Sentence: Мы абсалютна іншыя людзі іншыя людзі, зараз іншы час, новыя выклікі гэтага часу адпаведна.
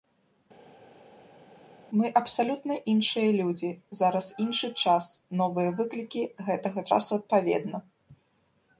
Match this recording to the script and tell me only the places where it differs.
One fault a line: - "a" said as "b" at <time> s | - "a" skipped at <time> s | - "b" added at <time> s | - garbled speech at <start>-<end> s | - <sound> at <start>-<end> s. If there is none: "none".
- "іншыя людзі" skipped at 3.7 s